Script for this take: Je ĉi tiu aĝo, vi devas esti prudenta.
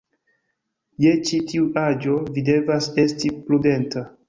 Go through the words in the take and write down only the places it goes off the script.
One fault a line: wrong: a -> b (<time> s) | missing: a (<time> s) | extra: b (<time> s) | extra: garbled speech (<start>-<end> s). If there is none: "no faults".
no faults